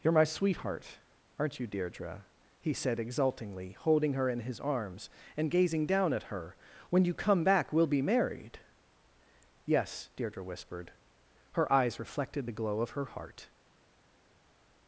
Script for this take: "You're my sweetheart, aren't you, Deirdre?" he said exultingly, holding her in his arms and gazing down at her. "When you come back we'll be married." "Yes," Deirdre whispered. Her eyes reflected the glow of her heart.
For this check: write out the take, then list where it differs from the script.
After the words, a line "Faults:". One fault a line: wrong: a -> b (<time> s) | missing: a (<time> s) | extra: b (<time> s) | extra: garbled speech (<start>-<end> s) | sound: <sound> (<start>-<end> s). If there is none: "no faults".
"You're my sweetheart, aren't you, Deirdre?" he said exultingly, holding her in his arms and gazing down at her. "When you come back we'll be married." "Yes," Deirdre whispered. Her eyes reflected the glow of her heart.
Faults:
no faults